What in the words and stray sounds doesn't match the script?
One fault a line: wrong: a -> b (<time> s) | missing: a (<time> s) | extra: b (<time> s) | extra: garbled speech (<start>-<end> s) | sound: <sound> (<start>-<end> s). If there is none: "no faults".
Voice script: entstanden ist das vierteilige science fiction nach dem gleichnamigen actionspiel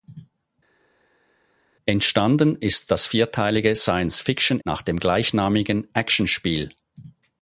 no faults